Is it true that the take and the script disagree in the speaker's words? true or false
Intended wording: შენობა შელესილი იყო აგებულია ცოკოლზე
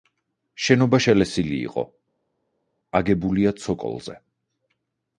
false